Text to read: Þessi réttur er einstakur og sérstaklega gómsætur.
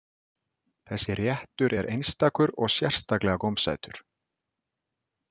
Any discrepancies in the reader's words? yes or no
no